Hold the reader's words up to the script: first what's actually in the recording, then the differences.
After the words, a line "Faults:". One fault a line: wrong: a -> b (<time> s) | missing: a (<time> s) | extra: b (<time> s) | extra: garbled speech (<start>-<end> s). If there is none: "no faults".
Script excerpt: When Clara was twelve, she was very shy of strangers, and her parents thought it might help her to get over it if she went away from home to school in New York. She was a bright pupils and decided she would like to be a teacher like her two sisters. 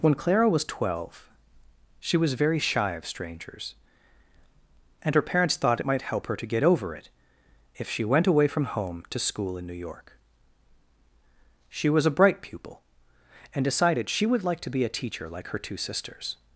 When Clara was twelve, she was very shy of strangers, and her parents thought it might help her to get over it if she went away from home to school in New York. She was a bright pupil and decided she would like to be a teacher like her two sisters.
Faults:
wrong: pupils -> pupil (12.4 s)